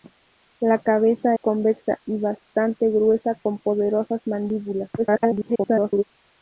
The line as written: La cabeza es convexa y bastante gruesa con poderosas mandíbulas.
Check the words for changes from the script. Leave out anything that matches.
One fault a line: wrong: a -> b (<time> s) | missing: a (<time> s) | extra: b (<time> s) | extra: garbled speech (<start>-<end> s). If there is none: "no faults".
missing: es (1.4 s)
extra: garbled speech (5.0-6.0 s)